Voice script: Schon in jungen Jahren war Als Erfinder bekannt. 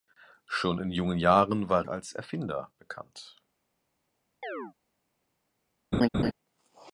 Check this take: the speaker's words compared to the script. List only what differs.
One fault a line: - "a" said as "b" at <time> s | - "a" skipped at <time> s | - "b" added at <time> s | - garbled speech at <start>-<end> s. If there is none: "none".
none